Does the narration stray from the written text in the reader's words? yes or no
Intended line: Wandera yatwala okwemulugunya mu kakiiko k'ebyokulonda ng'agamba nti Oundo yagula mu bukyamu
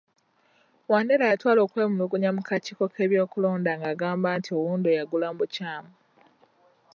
no